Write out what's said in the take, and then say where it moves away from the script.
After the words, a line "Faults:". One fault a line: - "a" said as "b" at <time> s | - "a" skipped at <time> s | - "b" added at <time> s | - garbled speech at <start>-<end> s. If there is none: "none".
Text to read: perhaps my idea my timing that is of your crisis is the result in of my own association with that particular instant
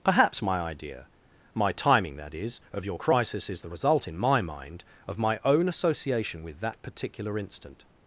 perhaps my idea my timing that is of your crisis is the result in my mind of my own association with that particular instant
Faults:
- "my mind" added at 4.2 s